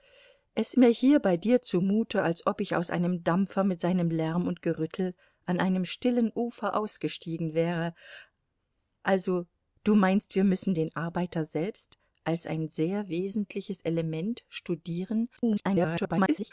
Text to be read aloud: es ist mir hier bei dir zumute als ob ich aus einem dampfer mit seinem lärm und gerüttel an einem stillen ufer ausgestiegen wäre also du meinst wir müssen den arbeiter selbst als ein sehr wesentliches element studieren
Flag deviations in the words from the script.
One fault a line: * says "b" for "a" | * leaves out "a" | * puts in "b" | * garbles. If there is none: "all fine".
* leaves out "ist"
* garbles